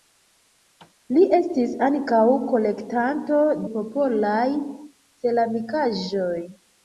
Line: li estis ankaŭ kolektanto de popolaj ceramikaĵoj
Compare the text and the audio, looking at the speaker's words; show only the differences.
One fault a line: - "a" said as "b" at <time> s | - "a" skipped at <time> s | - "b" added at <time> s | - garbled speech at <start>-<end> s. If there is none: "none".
- "de" skipped at 3.4 s